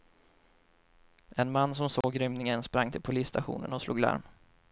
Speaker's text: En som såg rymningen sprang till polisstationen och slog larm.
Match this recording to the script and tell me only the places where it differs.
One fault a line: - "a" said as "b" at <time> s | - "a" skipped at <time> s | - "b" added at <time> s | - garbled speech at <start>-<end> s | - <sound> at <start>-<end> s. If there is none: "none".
- "man" added at 1.5 s
- dropout at 2.0-2.0 s